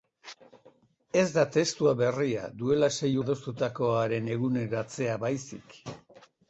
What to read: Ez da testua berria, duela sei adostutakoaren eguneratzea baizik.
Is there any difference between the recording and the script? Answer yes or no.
no